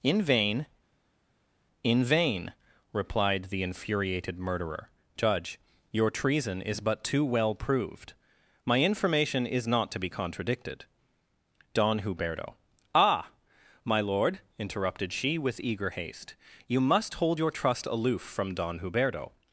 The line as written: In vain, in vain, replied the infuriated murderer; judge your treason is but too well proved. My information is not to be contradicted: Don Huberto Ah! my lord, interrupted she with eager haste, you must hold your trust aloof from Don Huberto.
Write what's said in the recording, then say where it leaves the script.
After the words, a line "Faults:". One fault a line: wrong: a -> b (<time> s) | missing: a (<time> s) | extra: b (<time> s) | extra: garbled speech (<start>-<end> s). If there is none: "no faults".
In vain, in vain, replied the infuriated murderer; judge your treason is but too well proved. My information is not to be contradicted: Don Huberto Ah! my lord, interrupted she with eager haste, you must hold your trust aloof from Don Huberto.
Faults:
no faults